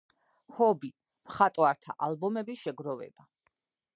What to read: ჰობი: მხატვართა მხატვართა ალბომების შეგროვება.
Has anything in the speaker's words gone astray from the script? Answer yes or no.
yes